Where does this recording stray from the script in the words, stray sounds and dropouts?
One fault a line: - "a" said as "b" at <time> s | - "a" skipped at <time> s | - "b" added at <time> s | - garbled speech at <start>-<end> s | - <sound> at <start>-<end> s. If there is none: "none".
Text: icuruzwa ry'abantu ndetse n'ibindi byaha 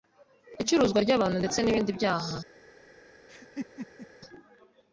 - laugh at 3.3-4.1 s